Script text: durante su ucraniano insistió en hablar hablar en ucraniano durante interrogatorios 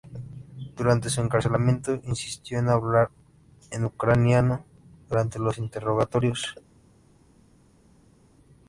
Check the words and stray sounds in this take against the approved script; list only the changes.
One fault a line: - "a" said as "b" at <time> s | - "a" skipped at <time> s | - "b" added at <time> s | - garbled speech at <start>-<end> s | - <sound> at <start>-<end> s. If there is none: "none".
- "ucraniano" said as "encarcelamiento" at 1.2 s
- "hablar" skipped at 3.1 s
- "los" added at 5.4 s